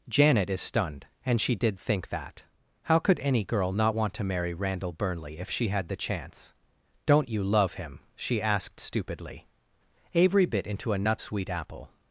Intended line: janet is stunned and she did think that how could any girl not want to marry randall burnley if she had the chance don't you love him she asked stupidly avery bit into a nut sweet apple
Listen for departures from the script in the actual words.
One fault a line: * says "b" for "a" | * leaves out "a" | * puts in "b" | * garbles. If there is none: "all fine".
all fine